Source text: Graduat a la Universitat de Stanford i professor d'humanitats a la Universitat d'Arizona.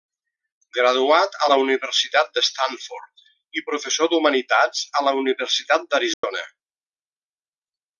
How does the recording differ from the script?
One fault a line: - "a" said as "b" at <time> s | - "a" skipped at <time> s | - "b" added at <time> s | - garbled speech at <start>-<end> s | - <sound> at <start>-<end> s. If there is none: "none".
- dropout at 6.1-6.2 s